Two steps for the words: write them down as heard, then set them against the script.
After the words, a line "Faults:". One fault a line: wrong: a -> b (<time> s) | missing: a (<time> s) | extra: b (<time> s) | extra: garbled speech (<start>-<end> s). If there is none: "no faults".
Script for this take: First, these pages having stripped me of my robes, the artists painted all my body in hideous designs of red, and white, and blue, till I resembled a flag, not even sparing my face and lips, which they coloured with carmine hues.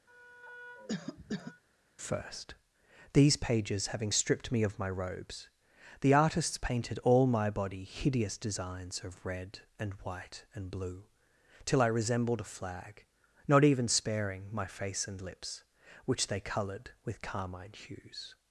First, these pages having stripped me of my robes, the artists painted all my body hideous designs of red, and white, and blue, till I resembled a flag, not even sparing my face and lips, which they coloured with carmine hues.
Faults:
missing: in (7.8 s)